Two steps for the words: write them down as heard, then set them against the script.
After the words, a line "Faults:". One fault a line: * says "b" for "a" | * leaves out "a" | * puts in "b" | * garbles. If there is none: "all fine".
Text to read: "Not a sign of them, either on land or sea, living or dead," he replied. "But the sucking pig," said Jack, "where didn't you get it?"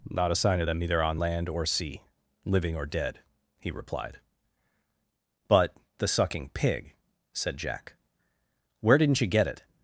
"Not a sign of them, either on land or sea, living or dead," he replied. "But the sucking pig," said Jack, "where didn't you get it?"
Faults:
all fine